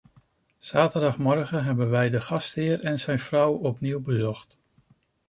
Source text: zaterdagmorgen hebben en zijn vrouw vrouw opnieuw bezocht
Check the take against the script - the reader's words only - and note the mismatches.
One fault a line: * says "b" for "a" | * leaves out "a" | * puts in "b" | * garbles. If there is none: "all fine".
* puts in "wij de gastheer"
* leaves out "vrouw"